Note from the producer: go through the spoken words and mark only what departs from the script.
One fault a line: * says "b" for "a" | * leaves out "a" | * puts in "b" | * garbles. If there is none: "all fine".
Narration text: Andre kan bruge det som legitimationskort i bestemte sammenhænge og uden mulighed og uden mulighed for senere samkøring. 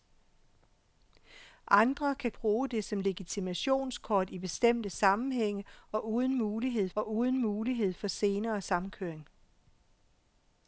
all fine